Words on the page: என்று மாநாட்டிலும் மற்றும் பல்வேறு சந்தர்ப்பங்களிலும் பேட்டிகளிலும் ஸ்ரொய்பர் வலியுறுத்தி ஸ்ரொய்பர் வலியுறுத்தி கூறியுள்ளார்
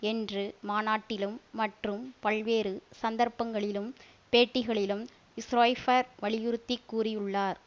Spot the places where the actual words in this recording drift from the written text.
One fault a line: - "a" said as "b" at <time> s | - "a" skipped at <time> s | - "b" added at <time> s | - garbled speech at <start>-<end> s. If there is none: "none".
- "ஸ்ரொய்பர் வலியுறுத்தி" skipped at 6.8 s